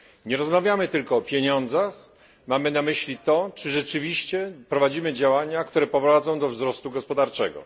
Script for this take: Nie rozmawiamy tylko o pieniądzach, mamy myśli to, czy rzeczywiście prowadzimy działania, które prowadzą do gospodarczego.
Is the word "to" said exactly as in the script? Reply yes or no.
yes